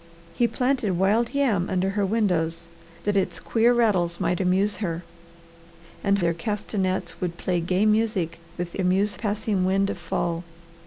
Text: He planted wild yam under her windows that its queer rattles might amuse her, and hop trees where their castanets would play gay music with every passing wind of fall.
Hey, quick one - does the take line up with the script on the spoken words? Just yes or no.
no